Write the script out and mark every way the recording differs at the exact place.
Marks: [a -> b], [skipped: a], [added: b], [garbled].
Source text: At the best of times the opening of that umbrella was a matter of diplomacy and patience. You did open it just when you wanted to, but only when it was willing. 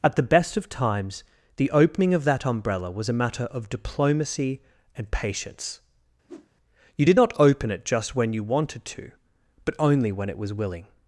At the best of times the opening of that umbrella was a matter of diplomacy and patience. You did [added: not] open it just when you wanted to, but only when it was willing.